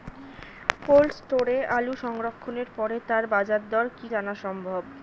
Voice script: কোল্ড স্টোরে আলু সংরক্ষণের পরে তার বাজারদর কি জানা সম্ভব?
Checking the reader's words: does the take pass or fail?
pass